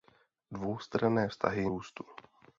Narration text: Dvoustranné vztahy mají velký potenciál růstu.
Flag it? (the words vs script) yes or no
yes